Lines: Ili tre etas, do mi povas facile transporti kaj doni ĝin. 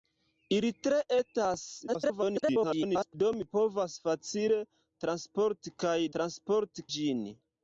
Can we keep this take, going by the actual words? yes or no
no